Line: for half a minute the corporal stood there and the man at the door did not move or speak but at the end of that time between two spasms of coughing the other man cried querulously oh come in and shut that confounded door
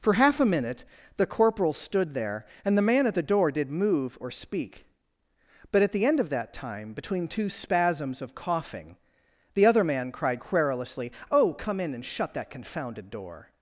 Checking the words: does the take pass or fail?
fail